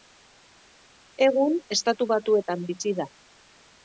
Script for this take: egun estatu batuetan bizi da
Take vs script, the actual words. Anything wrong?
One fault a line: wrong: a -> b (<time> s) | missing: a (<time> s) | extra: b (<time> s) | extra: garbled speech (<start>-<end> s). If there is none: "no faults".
no faults